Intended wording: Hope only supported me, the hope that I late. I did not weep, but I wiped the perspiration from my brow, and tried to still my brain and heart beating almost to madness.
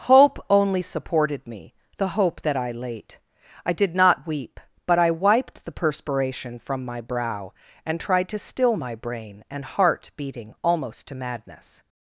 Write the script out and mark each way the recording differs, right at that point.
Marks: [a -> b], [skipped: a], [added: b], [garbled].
Hope only supported me, the hope that I late. I did not weep, but I wiped the perspiration from my brow, and tried to still my brain and heart beating almost to madness.